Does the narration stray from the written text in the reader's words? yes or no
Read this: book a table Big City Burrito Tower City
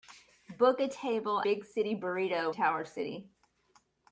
no